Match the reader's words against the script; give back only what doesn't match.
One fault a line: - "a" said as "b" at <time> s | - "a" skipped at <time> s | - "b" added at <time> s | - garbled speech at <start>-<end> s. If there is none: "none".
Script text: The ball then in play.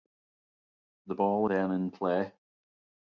none